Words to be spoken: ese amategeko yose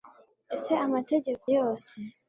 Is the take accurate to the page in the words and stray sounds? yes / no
yes